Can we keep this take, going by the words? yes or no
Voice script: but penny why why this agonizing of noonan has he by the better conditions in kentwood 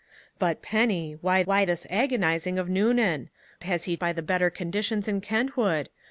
yes